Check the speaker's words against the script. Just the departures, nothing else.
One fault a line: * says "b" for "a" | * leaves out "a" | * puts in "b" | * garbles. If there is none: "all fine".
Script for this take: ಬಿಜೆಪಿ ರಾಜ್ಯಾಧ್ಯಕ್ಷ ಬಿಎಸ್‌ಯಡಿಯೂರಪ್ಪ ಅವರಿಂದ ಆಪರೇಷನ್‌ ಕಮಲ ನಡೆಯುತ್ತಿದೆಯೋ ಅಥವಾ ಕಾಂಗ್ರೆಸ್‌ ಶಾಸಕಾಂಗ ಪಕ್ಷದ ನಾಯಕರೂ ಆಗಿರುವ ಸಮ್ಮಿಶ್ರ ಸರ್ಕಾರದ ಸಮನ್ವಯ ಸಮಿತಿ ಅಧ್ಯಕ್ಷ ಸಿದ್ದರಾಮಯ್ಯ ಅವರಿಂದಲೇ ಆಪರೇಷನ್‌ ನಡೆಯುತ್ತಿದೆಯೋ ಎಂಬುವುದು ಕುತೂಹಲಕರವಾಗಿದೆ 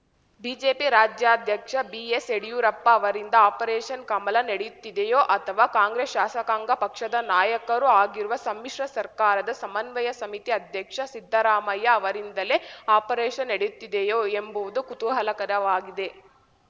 all fine